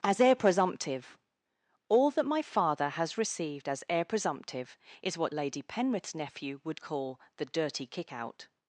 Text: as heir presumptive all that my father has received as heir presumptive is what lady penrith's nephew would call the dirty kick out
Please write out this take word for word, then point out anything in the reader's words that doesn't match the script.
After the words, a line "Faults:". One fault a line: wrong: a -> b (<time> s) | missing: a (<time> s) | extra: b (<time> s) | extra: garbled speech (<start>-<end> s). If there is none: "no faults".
as heir presumptive all that my father has received as heir presumptive is what lady penrith's nephew would call the dirty kick out
Faults:
no faults